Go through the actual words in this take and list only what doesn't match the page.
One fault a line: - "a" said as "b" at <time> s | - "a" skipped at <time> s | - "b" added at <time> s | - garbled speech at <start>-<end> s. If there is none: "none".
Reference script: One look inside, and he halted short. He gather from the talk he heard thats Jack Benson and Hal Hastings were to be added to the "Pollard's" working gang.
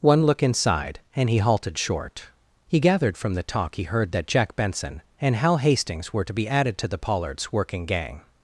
- "gather" said as "gathered" at 2.8 s
- "thats" said as "that" at 4.1 s